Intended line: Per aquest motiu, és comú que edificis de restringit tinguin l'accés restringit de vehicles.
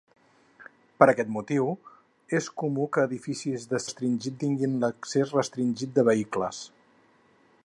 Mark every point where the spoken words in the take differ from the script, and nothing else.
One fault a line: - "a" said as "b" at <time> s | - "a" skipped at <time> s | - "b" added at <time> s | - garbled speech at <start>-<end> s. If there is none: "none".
none